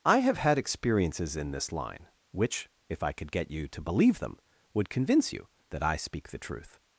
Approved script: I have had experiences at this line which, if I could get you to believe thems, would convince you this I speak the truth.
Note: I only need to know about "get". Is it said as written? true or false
true